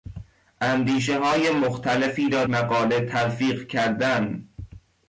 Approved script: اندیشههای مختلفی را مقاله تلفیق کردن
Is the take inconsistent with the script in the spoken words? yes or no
no